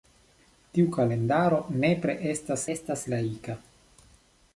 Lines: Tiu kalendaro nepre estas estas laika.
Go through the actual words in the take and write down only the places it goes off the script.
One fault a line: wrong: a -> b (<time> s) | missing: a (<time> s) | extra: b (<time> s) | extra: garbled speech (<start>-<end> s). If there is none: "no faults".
no faults